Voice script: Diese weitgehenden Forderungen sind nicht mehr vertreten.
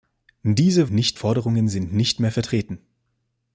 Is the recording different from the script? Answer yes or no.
yes